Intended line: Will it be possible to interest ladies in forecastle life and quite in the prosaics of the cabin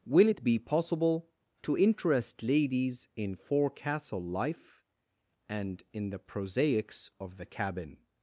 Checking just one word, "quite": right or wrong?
wrong